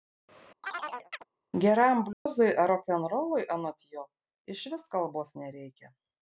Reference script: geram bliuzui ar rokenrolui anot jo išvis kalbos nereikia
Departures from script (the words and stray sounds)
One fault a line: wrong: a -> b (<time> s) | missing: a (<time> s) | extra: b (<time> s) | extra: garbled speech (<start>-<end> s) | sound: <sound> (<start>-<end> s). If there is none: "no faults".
sound: chirp (0.6-1.2 s)
sound: dropout (2.1-2.3 s)